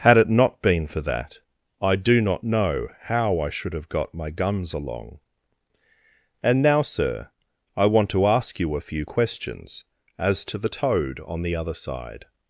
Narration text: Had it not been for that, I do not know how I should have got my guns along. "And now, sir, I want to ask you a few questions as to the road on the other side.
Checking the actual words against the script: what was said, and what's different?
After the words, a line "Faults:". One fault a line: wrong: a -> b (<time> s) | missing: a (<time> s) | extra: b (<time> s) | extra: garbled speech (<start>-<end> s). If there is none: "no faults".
Had it not been for that, I do not know how I should have got my guns along. "And now, sir, I want to ask you a few questions as to the toad on the other side.
Faults:
wrong: road -> toad (10.7 s)